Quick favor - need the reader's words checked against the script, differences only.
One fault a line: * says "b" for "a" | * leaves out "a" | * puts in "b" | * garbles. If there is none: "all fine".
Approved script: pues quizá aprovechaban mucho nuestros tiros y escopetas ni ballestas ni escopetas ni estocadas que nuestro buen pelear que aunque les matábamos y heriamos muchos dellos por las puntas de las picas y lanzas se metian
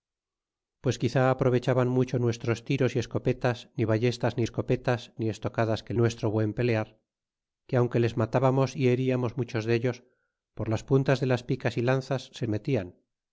all fine